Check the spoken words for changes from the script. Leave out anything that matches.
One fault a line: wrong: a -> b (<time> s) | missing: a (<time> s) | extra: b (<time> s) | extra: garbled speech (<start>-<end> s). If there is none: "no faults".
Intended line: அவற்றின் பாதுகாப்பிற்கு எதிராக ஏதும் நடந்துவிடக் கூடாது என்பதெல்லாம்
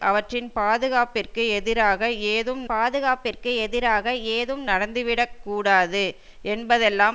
extra: பாதுகாப்பிற்கு எதிராக ஏதும் (2.7 s)